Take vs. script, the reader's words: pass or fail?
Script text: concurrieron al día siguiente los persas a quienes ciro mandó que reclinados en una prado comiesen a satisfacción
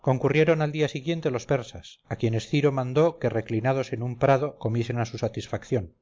fail